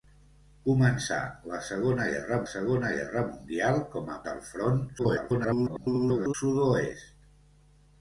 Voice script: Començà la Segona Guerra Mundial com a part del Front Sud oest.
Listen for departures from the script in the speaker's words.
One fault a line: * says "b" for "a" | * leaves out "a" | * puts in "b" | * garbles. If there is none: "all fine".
* puts in "Segona Guerra"
* leaves out "part"
* garbles